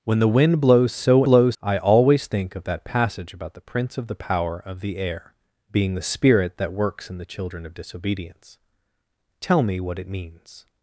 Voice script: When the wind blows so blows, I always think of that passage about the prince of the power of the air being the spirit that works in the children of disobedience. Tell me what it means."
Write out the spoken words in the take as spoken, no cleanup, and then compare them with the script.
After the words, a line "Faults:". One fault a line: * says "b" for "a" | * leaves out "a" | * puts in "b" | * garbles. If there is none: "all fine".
When the wind blows so blows, I always think of that passage about the prince of the power of the air being the spirit that works in the children of disobedience. Tell me what it means."
Faults:
all fine